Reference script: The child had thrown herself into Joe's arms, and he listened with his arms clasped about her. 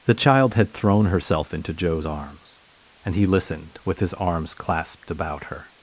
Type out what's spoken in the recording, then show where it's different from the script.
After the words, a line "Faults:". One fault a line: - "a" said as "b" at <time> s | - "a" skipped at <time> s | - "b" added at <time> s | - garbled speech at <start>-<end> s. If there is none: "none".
The child had thrown herself into Joe's arms, and he listened with his arms clasped about her.
Faults:
none